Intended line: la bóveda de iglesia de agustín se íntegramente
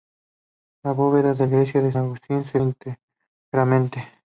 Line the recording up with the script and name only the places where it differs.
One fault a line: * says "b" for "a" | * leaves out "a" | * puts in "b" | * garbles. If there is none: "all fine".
all fine